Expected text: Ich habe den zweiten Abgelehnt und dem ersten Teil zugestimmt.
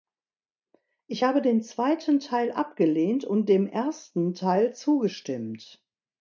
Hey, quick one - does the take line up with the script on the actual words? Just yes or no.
no